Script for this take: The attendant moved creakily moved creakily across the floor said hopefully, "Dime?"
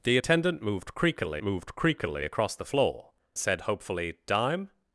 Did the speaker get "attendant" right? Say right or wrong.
right